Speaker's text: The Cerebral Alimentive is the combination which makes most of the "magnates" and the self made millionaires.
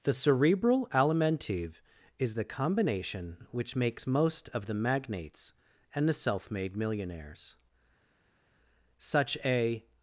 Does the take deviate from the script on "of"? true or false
false